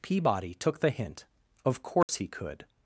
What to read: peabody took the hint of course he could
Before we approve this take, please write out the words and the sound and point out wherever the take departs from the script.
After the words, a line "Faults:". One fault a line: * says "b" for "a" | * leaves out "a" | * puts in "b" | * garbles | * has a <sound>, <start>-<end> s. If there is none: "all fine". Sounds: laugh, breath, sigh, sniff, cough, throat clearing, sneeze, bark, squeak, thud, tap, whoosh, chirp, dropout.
peabody took the hint of course he could
Faults:
* has a dropout, 2.0-2.1 s